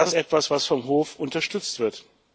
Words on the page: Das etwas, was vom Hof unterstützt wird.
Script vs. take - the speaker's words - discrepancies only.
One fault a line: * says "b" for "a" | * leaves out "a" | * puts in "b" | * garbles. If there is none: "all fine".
all fine